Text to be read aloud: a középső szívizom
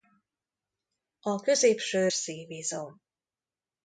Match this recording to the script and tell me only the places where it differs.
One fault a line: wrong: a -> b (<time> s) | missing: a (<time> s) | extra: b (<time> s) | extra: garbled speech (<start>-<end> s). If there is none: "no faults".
no faults